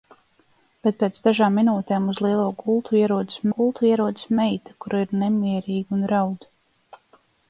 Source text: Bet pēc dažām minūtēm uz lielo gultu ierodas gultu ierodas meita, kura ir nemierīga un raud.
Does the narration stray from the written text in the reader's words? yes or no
no